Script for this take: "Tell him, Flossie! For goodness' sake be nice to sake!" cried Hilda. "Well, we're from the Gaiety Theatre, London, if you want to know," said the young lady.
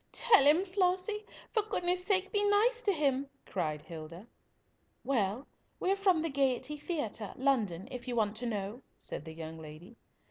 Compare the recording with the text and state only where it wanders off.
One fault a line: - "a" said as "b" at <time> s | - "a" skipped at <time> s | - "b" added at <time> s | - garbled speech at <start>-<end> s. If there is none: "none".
- "sake" said as "him" at 2.9 s